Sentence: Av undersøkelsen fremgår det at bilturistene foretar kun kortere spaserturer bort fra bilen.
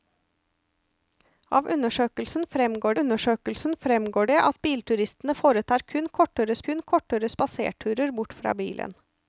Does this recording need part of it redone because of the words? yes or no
yes